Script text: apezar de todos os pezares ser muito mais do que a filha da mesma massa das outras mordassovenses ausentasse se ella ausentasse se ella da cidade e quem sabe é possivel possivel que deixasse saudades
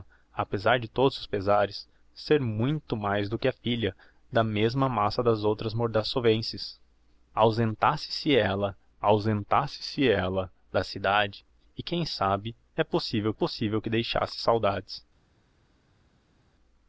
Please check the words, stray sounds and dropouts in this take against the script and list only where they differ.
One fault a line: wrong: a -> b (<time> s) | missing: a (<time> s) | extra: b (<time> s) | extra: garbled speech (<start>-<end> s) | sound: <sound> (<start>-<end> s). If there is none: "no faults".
no faults